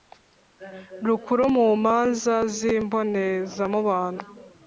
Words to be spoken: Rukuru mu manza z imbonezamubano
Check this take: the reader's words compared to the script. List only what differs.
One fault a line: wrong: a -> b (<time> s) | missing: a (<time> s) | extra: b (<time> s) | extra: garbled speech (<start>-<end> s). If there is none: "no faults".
no faults